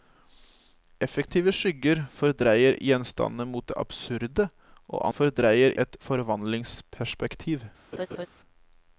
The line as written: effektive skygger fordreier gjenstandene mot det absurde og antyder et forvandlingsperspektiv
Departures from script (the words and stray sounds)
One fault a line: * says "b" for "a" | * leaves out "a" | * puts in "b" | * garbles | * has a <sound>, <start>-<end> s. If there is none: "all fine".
* says "fordreier" for "antyder"
* has a laugh, 7.9-8.3 s